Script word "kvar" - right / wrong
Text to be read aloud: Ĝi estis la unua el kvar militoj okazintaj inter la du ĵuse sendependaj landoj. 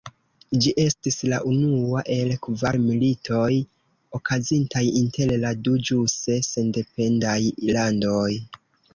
right